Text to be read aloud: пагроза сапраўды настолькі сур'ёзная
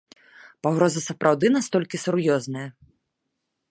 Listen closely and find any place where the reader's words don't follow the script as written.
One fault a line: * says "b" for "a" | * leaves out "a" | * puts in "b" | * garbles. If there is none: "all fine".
all fine